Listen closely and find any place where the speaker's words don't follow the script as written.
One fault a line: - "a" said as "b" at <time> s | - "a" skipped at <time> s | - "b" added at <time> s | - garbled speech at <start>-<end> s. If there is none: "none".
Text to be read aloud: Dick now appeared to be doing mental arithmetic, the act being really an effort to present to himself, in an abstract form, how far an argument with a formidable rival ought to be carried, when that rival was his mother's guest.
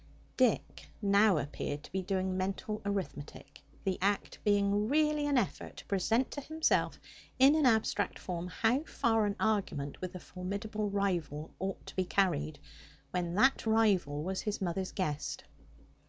none